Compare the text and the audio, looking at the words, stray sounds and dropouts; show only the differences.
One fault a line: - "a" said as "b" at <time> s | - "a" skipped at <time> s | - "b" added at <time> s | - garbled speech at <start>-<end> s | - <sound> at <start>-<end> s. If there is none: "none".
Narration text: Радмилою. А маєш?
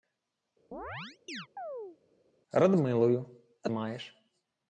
- chirp at 0.7-2.0 s